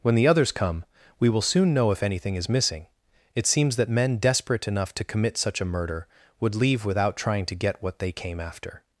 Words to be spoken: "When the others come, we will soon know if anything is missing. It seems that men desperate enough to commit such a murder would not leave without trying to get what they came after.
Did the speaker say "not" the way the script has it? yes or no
no